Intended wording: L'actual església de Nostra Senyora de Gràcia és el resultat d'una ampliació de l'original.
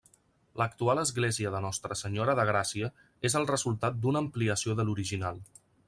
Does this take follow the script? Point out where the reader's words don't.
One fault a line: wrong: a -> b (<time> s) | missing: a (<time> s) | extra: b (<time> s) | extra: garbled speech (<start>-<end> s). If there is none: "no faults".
no faults